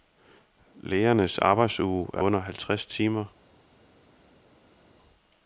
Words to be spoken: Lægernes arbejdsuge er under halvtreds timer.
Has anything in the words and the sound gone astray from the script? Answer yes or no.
no